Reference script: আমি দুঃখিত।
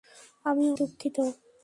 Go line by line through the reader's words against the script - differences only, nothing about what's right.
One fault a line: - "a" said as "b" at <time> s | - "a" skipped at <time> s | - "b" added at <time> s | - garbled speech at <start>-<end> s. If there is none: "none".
none